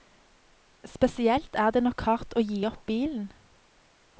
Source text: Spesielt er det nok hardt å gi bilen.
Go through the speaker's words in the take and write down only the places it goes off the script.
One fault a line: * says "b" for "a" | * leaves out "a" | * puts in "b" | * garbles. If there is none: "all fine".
* puts in "opp"